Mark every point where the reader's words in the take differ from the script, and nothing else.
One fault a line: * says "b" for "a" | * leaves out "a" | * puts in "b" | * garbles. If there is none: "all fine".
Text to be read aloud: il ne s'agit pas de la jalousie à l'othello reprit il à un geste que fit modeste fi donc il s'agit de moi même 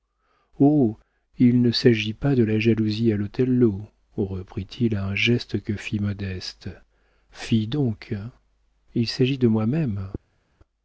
all fine